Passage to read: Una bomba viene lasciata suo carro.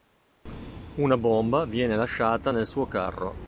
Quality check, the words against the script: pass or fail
fail